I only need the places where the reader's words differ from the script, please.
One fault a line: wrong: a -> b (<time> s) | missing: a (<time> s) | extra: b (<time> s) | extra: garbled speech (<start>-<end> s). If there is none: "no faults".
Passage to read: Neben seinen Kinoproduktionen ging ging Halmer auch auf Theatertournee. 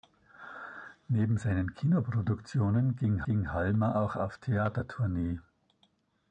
no faults